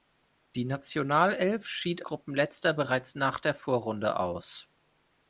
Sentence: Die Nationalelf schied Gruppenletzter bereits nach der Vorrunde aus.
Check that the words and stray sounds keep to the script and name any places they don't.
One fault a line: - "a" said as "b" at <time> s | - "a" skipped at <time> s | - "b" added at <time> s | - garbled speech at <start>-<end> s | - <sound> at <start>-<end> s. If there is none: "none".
none